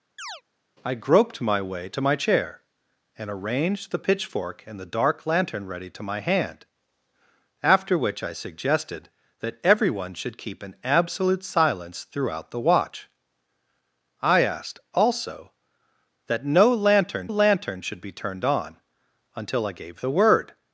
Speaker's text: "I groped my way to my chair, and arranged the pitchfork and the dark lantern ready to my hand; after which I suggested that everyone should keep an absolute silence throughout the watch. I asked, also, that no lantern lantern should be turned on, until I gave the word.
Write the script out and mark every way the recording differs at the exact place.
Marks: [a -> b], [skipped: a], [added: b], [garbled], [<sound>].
[chirp] "I groped my way to my chair, and arranged the pitchfork and the dark lantern ready to my hand; after which I suggested that everyone should keep an absolute silence throughout the watch. I asked, also, that no lantern lantern should be turned on, until I gave the word.